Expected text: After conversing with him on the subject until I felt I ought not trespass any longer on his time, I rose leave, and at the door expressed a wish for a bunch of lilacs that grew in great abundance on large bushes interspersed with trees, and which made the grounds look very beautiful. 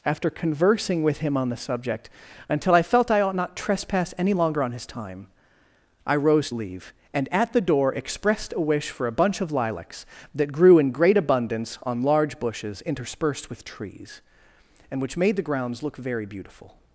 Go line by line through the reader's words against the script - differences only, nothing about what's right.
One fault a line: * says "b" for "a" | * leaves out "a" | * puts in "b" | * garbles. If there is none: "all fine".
all fine